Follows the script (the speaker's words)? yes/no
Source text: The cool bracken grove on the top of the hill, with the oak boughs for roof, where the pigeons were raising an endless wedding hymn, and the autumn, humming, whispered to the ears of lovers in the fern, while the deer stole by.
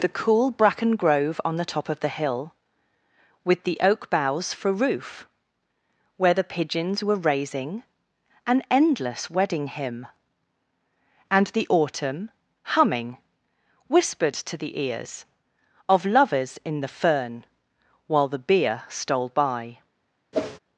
no